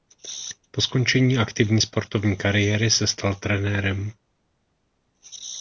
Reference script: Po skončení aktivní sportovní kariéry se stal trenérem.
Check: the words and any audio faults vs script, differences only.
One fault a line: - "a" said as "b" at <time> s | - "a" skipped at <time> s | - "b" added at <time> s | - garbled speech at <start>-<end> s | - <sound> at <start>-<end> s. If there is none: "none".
none